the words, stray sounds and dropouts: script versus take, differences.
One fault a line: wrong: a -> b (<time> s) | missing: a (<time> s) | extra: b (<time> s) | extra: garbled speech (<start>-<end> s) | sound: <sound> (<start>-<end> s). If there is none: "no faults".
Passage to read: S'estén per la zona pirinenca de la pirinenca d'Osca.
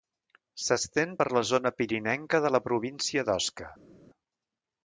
wrong: pirinenca -> província (2.7 s)